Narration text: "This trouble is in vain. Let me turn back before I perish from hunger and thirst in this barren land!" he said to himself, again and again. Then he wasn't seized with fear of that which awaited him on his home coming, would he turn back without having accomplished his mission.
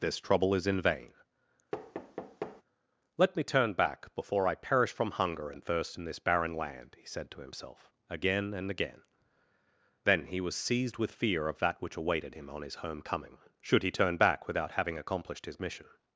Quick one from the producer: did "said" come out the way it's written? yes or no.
yes